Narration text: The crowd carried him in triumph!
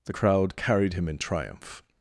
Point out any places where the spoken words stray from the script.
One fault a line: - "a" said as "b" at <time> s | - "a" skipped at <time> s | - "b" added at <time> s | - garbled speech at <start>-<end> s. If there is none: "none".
none